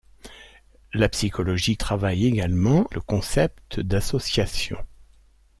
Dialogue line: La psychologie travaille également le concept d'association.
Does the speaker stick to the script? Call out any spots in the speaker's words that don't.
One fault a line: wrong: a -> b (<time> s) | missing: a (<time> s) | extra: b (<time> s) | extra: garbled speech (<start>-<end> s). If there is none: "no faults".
no faults